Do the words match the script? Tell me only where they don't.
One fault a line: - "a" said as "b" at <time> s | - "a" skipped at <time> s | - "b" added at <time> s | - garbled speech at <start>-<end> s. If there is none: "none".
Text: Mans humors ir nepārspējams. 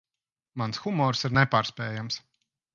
none